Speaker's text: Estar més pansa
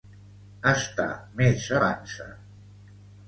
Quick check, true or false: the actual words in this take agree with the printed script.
true